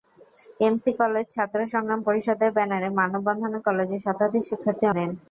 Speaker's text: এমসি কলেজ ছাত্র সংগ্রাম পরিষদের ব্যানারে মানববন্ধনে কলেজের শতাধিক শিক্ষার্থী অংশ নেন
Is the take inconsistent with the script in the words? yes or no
yes